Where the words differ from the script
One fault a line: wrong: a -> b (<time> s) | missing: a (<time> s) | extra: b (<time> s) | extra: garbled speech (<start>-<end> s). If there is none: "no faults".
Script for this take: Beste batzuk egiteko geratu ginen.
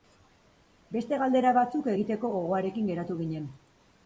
extra: galdera (1.2 s)
extra: gogoarekin (2.3 s)